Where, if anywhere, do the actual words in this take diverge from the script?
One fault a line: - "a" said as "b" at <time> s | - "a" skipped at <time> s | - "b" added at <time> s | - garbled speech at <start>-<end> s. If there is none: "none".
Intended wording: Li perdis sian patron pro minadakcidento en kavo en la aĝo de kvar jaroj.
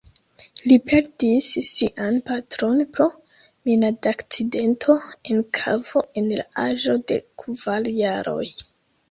none